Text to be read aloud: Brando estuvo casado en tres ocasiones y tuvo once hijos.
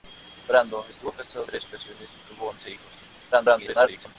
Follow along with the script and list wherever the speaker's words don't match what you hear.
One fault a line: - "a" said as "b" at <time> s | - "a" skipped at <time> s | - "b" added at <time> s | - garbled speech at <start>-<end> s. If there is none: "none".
- "en" skipped at 1.4 s
- garbled speech at 3.3-4.2 s